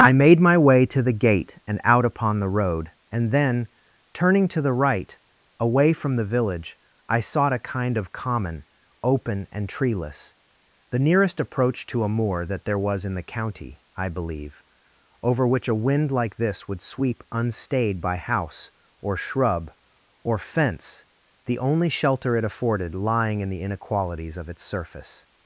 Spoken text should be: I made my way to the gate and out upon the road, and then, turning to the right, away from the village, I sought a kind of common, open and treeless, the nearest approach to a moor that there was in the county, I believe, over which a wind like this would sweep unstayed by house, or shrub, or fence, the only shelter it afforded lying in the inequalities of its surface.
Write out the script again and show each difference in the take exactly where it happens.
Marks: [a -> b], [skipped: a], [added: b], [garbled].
I made my way to the gate and out upon the road, and then, turning to the right, away from the village, I sought a kind of common, open and treeless, the nearest approach to a moor that there was in the county, I believe, over which a wind like this would sweep unstayed by house, or shrub, or fence, the only shelter it afforded lying in the inequalities of its surface.